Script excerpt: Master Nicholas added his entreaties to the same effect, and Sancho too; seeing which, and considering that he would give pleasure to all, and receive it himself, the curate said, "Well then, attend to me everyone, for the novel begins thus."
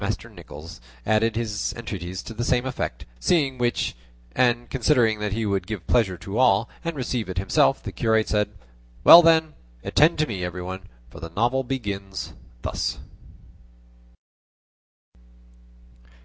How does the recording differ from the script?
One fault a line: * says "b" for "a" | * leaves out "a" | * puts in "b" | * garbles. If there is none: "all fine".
* leaves out "and Sancho too"